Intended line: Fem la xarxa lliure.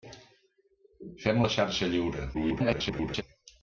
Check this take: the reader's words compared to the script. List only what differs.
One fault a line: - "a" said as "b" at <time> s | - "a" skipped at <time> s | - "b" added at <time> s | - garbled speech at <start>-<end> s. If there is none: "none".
- garbled speech at 2.3-3.2 s